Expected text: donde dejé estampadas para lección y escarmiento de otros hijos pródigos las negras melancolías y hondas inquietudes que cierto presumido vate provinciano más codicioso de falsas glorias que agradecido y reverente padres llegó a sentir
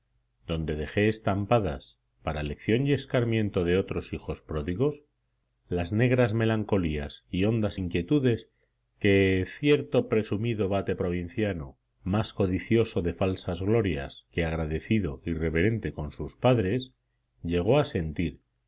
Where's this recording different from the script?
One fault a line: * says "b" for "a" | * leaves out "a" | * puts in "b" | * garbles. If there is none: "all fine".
* puts in "con sus"